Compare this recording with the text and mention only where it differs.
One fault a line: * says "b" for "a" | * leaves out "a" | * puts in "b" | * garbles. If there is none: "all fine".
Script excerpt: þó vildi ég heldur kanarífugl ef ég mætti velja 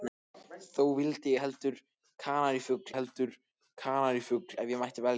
* puts in "heldur kanarífugl"